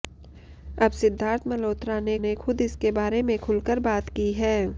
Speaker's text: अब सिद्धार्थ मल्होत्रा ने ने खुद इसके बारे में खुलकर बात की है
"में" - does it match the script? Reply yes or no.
yes